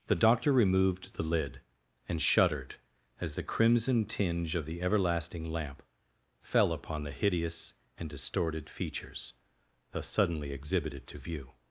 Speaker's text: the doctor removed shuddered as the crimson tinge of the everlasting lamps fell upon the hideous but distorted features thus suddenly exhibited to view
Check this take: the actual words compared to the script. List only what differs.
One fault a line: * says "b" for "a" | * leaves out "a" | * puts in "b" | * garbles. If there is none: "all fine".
* puts in "the lid and"
* says "lamp" for "lamps"
* says "and" for "but"